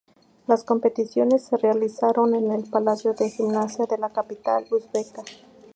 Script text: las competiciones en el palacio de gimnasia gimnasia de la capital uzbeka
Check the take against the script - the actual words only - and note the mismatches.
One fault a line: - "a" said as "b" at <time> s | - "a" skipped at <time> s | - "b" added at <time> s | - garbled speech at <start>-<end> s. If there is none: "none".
- "se realizaron" added at 1.4 s
- "gimnasia" skipped at 3.9 s